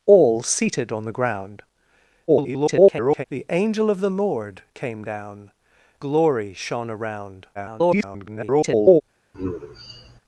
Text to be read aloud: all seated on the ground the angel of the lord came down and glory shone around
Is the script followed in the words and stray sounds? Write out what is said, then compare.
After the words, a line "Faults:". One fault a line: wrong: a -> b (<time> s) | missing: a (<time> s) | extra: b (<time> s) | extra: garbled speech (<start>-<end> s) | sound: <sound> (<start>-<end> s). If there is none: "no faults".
all seated on the ground [garbled] the angel of the lord came down glory shone around [garbled]
Faults:
extra: garbled speech (2.3-3.3 s)
missing: and (5.5 s)
extra: garbled speech (7.5-9.0 s)
sound: sigh (9.3-10.2 s)